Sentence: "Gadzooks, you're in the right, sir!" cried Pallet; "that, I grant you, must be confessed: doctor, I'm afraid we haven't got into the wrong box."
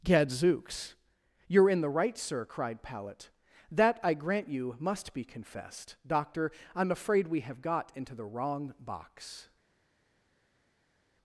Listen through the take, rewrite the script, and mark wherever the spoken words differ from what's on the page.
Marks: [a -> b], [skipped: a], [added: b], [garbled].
"Gadzooks, you're in the right, sir!" cried Pallet; "that, I grant you, must be confessed: doctor, I'm afraid we [haven't -> have] got into the wrong box."